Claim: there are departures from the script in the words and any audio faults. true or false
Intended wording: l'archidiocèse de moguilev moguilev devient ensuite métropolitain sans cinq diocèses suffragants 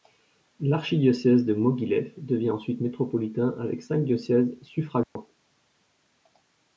true